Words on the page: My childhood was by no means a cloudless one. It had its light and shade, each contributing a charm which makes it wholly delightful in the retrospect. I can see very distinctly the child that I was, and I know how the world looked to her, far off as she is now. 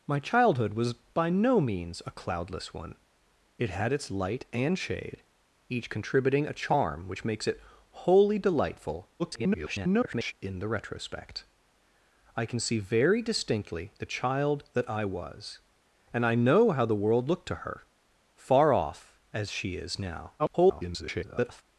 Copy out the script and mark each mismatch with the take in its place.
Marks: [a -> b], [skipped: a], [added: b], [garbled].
My childhood was by no means a cloudless one. It had its light and shade, each contributing a charm which makes it wholly delightful [garbled] in the retrospect. I can see very distinctly the child that I was, and I know how the world looked to her, far off as she is now. [garbled]